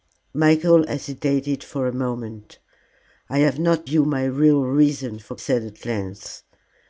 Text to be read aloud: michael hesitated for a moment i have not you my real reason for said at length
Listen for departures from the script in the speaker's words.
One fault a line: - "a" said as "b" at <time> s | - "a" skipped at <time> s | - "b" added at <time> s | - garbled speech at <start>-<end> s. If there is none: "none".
none